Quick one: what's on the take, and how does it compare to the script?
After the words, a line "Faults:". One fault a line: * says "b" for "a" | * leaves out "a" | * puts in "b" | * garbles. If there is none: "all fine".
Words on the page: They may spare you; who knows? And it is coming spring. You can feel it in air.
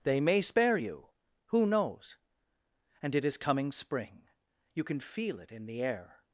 They may spare you; who knows? And it is coming spring. You can feel it in the air.
Faults:
* puts in "the"